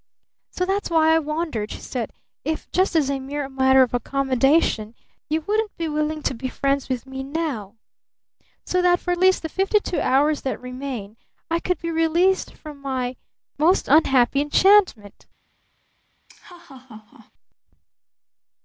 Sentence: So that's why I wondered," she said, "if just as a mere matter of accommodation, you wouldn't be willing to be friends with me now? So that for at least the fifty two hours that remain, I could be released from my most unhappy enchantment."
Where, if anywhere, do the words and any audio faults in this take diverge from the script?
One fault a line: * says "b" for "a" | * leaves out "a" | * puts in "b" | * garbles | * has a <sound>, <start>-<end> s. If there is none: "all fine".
* has a laugh, 16.3-17.3 s